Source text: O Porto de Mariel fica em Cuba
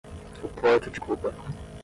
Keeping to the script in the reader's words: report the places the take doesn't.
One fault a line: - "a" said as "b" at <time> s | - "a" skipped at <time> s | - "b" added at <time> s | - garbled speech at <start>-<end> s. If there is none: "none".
- "Mariel fica" skipped at 1.0 s